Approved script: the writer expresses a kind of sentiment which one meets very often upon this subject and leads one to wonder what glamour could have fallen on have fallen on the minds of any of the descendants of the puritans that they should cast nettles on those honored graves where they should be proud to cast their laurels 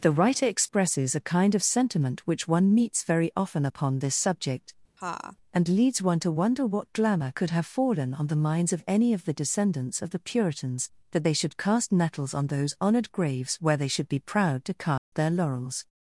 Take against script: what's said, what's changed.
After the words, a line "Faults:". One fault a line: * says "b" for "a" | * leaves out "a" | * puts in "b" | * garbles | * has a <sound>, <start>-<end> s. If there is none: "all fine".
the writer expresses a kind of sentiment which one meets very often upon this subject and leads one to wonder what glamour could have fallen on the minds of any of the descendants of the puritans that they should cast nettles on those honored graves where they should be proud to cast their laurels
Faults:
* has a laugh, 5.0-5.4 s
* leaves out "have fallen on"
* has a dropout, 15.0-15.1 s